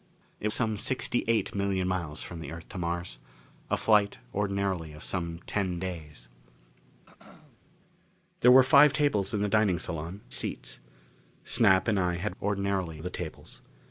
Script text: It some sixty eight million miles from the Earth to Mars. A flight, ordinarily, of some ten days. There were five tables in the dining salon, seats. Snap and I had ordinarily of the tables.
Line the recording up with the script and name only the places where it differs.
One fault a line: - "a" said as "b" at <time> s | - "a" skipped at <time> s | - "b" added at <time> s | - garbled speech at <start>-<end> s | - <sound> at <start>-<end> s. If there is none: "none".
- throat clearing at 7.1-7.6 s